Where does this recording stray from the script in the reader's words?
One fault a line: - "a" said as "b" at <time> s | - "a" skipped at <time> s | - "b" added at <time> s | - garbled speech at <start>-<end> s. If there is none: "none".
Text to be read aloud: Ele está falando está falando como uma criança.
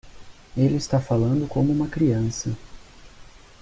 - "está falando" skipped at 1.5 s